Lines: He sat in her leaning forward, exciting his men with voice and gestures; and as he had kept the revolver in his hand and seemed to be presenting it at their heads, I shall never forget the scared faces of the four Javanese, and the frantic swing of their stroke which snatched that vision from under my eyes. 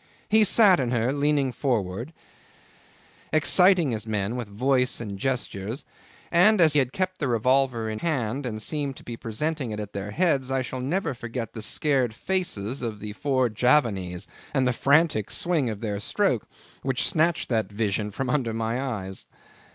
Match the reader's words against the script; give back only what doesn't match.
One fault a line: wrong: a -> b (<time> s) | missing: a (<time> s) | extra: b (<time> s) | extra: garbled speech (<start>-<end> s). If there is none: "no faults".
missing: he (6.7 s)
missing: his (8.0 s)